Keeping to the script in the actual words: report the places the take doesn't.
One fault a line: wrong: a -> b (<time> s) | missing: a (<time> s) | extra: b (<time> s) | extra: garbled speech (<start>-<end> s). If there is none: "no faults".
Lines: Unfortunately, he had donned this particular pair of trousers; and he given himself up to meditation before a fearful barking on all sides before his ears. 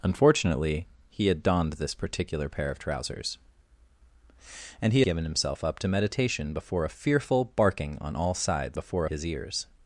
no faults